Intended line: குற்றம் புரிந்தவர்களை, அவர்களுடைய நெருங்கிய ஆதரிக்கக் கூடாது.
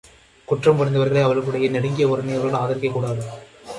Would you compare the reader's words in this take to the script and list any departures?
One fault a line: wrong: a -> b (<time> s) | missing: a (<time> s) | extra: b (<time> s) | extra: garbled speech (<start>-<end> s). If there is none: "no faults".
extra: உறவினர்கள் (2.1 s)